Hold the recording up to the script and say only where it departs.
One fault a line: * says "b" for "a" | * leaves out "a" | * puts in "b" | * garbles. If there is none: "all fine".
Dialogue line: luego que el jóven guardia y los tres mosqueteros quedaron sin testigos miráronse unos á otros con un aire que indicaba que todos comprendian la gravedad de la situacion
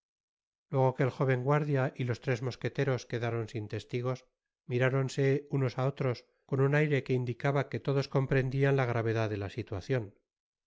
all fine